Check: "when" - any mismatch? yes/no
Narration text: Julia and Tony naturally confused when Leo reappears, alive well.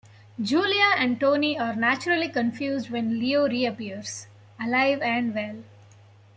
no